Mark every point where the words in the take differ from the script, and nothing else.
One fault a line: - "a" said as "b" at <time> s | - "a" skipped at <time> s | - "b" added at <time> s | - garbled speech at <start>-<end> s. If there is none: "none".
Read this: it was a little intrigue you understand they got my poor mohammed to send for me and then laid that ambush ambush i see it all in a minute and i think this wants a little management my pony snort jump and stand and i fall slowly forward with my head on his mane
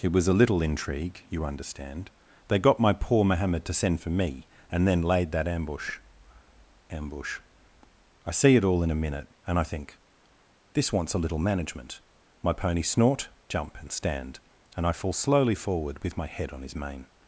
none